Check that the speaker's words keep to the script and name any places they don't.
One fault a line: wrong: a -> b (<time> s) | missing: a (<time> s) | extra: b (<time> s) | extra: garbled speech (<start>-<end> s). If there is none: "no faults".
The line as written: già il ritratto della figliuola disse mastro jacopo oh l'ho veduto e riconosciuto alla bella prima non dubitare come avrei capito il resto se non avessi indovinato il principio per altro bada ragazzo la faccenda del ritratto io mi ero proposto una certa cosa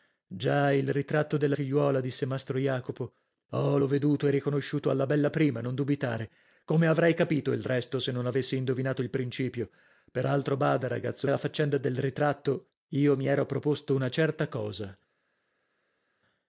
no faults